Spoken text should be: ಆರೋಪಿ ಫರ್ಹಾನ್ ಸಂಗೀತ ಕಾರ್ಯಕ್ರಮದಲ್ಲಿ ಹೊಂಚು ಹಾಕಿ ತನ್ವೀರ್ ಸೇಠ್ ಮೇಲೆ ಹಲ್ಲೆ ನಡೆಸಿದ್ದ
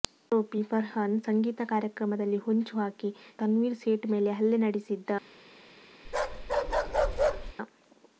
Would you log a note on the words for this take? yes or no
no